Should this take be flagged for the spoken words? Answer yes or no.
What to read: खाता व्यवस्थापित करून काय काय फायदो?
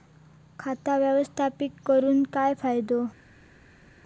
yes